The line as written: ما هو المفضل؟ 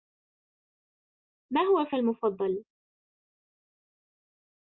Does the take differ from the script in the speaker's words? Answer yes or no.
no